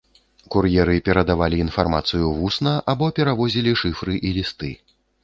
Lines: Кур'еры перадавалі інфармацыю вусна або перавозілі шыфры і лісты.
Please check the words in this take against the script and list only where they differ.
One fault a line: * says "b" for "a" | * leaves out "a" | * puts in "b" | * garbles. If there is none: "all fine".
all fine